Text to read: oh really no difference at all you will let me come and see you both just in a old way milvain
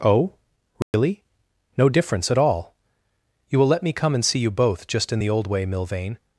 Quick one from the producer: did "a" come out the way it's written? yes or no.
no